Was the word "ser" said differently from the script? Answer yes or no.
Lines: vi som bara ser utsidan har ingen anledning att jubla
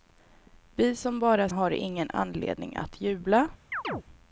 yes